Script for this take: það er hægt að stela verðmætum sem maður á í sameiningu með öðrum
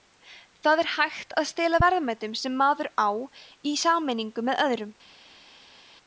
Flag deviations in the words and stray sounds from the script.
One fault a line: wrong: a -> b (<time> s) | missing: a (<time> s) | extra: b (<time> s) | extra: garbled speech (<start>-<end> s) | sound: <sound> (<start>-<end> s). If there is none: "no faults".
no faults